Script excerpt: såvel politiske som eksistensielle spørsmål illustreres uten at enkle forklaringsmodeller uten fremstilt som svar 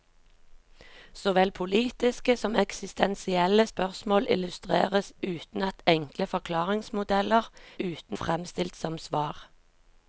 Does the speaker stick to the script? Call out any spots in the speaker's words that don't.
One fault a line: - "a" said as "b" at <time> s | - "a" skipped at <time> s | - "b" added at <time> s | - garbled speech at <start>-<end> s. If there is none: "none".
none